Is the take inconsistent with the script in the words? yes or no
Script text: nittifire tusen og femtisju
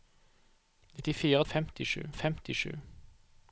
yes